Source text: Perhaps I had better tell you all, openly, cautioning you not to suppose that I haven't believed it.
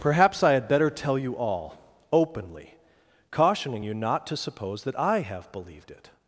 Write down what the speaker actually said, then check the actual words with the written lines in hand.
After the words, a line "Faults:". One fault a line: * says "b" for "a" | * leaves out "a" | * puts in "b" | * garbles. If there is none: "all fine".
Perhaps I had better tell you all, openly, cautioning you not to suppose that I have believed it.
Faults:
* says "have" for "haven't"